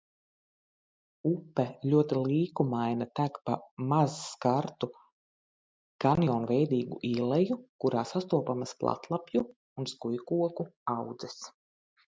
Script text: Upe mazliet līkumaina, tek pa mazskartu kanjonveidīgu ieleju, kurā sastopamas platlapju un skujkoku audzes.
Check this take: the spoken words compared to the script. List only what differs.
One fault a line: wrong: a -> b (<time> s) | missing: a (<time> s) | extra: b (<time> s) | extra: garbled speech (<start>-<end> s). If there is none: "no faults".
wrong: mazliet -> ļoti (1.9 s)